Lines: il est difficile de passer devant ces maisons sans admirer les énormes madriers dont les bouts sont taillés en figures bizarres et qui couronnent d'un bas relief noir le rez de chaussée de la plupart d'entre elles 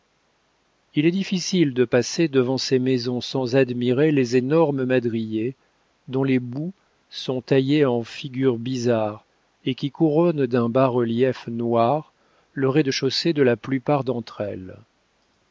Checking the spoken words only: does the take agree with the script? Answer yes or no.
yes